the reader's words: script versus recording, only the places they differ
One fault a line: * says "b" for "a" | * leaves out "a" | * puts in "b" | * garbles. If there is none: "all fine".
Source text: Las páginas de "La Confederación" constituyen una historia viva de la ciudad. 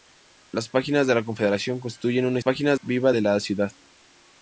* says "páginas" for "historia"